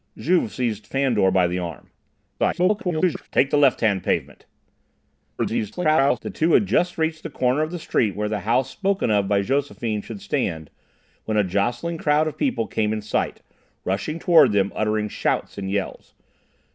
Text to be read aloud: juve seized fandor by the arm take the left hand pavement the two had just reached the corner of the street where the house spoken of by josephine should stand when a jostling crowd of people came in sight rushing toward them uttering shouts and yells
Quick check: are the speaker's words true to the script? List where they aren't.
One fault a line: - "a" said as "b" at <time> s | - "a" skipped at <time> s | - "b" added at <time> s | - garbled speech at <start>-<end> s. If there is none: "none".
- garbled speech at 2.4-3.3 s
- garbled speech at 5.4-6.2 s